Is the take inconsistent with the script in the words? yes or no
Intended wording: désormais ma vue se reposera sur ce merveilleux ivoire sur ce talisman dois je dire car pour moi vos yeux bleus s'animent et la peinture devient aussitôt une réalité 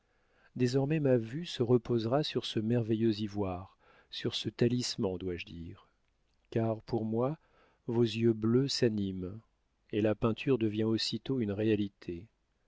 no